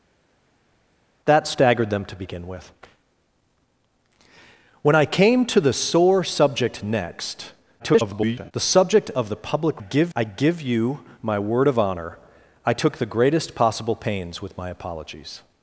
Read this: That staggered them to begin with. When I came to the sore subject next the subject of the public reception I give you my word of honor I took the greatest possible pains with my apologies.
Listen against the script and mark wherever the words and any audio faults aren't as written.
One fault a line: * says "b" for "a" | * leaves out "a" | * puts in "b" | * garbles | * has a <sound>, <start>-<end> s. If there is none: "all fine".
* garbles
* says "give" for "reception"